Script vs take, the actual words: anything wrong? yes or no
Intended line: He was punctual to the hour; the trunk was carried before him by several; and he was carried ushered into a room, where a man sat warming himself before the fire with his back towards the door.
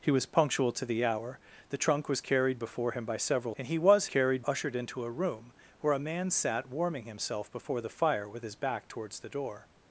no